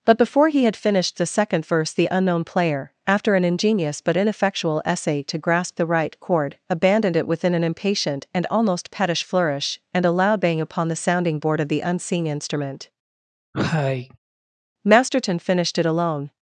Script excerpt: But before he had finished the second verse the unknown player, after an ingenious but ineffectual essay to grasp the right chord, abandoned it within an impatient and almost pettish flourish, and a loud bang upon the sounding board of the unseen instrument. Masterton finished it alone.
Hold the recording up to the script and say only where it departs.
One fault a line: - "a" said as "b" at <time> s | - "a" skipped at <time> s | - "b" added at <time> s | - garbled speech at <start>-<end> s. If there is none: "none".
none